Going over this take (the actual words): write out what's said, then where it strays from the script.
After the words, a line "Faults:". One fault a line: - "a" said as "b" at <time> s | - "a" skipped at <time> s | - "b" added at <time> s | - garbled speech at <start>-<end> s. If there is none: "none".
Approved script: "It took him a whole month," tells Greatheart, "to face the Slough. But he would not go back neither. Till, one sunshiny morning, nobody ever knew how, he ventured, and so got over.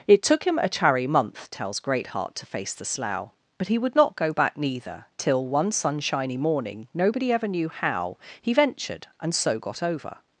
"It took him a chary month," tells Greatheart, "to face the Slough. But he would not go back neither. Till, one sunshiny morning, nobody ever knew how, he ventured, and so got over.
Faults:
- "whole" said as "chary" at 0.7 s